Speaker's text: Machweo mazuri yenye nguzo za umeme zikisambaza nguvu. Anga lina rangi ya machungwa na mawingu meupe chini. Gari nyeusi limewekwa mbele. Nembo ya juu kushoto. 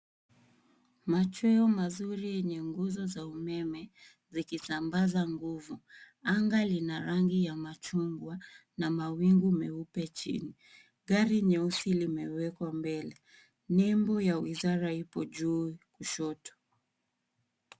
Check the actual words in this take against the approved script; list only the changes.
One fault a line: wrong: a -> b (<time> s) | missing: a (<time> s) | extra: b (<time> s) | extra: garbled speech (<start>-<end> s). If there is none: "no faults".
extra: wizara ipo (14.4 s)